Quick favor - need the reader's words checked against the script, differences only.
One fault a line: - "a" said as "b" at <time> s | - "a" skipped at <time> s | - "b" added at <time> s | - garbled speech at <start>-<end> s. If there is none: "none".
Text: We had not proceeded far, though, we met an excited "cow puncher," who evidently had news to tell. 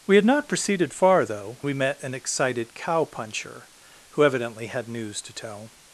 none